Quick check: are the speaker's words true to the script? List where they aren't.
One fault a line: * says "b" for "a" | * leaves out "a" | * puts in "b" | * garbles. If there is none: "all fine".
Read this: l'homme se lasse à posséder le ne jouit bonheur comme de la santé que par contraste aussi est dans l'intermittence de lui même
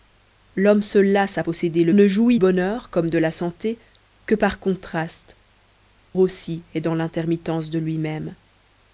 all fine